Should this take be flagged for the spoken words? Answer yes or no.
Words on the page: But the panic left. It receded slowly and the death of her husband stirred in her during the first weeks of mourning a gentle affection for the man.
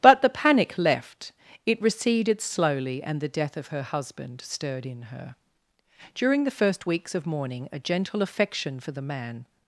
no